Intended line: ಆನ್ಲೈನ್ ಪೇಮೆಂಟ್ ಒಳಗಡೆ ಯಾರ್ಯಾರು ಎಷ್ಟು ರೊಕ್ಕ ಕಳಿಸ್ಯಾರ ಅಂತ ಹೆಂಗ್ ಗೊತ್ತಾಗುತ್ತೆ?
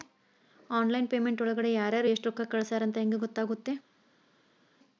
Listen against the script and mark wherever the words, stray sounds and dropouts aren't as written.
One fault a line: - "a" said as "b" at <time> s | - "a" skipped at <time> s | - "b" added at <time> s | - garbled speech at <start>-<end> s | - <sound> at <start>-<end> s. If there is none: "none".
none